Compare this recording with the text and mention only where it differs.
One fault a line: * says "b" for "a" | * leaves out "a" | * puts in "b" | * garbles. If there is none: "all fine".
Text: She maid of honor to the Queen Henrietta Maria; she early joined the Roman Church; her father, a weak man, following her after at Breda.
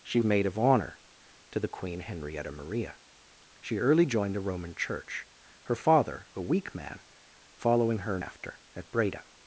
all fine